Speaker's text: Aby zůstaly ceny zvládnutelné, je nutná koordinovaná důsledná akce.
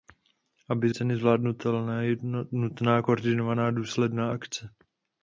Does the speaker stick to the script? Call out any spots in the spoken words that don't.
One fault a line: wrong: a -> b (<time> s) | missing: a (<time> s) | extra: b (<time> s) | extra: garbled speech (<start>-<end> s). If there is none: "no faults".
missing: zůstaly (0.9 s)